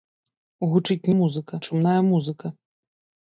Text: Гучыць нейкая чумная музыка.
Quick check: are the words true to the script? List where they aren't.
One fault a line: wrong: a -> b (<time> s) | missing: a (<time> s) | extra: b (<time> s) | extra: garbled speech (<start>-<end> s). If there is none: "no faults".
wrong: нейкая -> музыка (1.2 s)